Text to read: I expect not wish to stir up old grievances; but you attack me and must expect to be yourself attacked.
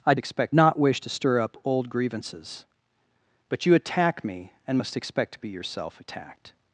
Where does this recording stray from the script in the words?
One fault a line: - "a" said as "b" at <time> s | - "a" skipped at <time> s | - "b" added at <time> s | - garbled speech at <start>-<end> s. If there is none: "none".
none